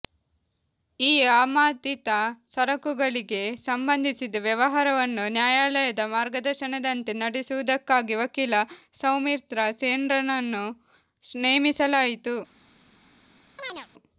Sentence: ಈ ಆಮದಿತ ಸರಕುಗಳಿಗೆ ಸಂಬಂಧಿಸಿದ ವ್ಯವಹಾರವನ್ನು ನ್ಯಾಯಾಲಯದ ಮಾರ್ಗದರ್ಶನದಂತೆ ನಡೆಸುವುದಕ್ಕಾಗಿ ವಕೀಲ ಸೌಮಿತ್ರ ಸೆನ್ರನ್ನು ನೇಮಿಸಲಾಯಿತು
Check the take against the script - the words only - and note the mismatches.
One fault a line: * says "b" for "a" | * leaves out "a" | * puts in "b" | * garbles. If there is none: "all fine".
all fine